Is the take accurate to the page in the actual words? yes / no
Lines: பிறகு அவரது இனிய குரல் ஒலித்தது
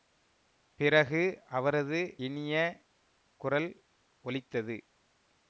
yes